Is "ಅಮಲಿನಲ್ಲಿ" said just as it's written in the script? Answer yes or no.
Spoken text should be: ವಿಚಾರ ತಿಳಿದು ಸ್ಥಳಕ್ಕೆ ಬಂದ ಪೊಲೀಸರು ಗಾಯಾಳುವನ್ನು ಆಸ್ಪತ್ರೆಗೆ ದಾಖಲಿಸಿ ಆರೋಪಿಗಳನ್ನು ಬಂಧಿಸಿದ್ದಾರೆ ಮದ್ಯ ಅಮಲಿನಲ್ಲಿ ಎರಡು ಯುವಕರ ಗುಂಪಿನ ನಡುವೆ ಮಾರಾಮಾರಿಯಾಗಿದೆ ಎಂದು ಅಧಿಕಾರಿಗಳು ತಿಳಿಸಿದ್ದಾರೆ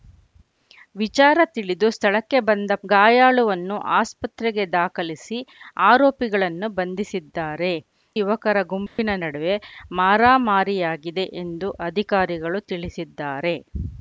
no